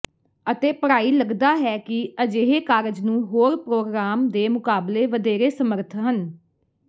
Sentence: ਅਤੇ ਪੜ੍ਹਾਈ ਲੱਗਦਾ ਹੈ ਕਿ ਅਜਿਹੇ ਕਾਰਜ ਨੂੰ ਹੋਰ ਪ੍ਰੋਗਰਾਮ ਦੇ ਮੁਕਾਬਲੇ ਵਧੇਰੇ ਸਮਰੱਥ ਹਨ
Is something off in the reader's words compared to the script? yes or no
no